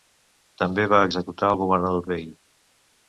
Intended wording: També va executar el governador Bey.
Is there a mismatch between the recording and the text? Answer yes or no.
no